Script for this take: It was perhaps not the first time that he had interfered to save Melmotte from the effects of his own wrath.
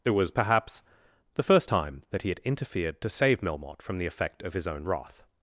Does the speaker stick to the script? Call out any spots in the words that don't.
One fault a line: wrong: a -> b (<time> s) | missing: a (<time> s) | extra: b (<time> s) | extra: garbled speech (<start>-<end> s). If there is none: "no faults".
missing: not (0.8 s)
wrong: effects -> effect (4.1 s)